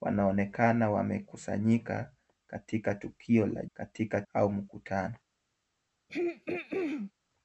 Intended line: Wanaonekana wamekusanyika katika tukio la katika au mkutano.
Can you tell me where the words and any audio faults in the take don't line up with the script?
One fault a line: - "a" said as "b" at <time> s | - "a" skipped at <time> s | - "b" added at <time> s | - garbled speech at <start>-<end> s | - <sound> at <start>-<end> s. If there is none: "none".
- throat clearing at 6.1-7.1 s